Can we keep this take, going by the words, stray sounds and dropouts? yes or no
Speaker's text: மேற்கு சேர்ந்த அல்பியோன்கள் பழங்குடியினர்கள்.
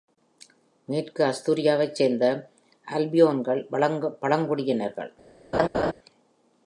no